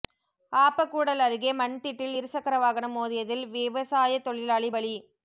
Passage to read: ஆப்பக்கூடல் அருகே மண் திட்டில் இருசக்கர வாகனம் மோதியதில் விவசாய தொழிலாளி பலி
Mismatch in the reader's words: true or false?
false